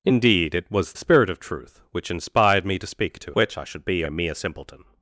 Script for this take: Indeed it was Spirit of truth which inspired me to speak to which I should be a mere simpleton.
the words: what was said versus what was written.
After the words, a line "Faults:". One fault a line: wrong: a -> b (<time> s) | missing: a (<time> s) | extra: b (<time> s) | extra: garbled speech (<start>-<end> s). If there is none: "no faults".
Indeed it was Spirit of truth which inspired me to speak to which I should be a mere simpleton.
Faults:
no faults